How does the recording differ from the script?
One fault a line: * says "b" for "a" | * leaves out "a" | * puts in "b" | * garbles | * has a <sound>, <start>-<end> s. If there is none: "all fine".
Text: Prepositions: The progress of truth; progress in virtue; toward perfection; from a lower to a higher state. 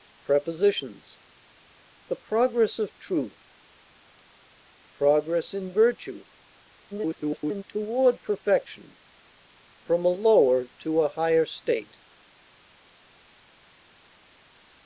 * garbles